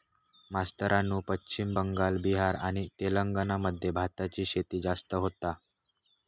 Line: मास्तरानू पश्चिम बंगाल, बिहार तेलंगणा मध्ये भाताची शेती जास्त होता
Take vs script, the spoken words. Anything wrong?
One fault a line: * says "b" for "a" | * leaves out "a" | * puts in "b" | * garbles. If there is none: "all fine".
* puts in "आणि"